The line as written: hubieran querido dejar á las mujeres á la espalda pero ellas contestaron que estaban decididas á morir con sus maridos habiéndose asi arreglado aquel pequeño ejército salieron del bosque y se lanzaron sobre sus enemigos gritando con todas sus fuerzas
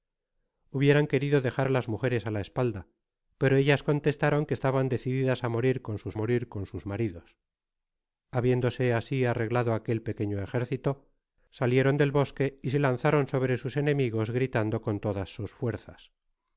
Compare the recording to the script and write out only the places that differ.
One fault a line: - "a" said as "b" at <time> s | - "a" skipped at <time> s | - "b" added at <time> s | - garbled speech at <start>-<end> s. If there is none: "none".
- "morir con sus" added at 6.2 s